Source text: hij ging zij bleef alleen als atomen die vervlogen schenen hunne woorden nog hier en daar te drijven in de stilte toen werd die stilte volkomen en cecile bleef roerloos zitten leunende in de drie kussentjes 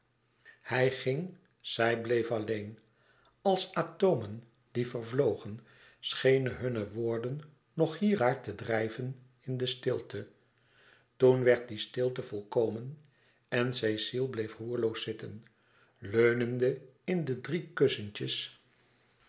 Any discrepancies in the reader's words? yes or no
yes